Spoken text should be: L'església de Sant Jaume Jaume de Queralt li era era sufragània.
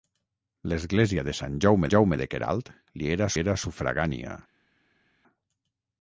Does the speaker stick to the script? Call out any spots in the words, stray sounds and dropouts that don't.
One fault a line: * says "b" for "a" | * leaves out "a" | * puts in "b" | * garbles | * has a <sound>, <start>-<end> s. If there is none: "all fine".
all fine